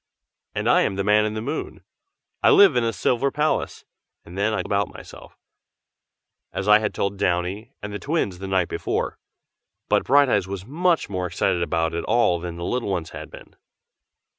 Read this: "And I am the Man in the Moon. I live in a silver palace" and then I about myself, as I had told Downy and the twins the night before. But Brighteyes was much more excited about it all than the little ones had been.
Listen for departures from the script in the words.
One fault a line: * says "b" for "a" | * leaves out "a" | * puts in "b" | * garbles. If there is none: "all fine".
all fine